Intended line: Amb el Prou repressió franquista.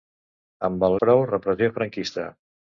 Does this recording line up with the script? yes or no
yes